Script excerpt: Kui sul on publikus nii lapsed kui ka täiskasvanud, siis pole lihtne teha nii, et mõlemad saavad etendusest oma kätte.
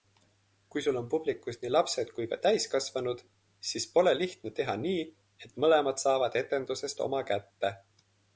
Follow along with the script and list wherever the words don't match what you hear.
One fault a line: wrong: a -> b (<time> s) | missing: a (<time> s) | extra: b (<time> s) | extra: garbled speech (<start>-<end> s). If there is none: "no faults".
no faults